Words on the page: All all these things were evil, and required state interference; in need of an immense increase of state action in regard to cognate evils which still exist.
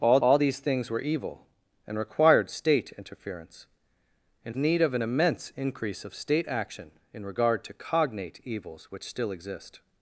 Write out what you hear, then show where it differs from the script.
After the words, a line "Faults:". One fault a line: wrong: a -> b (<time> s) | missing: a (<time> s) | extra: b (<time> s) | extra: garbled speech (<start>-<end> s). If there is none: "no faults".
All all these things were evil, and required state interference; in need of an immense increase of state action in regard to cognate evils which still exist.
Faults:
no faults